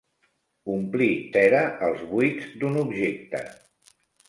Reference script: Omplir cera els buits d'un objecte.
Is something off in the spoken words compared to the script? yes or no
no